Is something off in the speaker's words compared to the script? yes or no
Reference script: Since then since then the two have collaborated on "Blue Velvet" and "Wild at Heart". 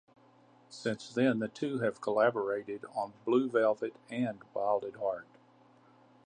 yes